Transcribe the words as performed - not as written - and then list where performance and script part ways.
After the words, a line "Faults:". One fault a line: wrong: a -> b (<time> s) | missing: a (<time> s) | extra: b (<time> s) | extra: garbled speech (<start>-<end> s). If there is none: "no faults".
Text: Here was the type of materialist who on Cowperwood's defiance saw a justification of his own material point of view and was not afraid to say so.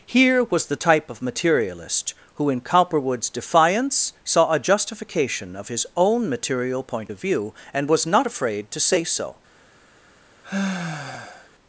Here was the type of materialist who in Cowperwood's defiance saw a justification of his own material point of view and was not afraid to say so.
Faults:
wrong: on -> in (2.5 s)